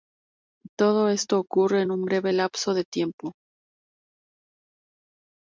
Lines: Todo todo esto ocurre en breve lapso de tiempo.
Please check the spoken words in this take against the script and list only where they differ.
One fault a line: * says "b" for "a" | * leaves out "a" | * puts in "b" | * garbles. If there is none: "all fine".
* leaves out "todo"
* puts in "un"